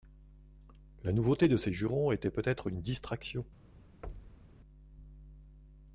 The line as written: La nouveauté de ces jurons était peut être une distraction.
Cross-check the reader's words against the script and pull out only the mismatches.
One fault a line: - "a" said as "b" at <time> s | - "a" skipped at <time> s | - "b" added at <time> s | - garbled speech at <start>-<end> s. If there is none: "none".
none